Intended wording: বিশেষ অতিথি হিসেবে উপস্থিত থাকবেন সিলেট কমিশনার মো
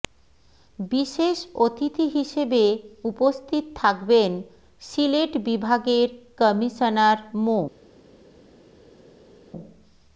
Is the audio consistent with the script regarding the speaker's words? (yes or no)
no